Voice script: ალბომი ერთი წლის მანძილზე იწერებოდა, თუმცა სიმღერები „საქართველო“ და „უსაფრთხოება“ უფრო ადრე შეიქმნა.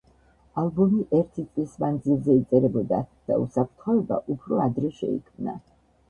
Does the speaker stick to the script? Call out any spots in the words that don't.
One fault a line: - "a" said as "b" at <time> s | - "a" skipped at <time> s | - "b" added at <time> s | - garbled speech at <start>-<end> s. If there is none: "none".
- "თუმცა სიმღერები საქართველო" skipped at 3.0 s